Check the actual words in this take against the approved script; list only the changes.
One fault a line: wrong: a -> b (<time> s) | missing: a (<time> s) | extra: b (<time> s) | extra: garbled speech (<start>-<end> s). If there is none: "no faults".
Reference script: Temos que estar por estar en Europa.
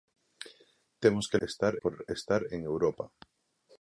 no faults